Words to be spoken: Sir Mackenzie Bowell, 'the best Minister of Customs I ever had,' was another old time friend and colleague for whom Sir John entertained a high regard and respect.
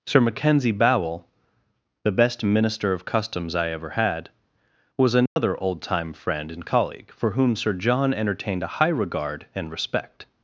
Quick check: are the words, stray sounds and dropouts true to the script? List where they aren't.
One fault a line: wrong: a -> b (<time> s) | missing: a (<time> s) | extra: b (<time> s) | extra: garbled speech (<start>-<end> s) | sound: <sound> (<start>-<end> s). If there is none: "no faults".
sound: dropout (5.3-5.4 s)